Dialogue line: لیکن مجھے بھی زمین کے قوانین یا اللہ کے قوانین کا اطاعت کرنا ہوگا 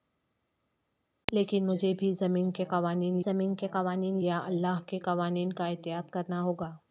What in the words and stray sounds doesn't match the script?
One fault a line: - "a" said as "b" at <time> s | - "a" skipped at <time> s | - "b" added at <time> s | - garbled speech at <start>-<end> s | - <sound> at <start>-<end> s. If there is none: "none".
- "زمین کے قوانین" added at 3.2 s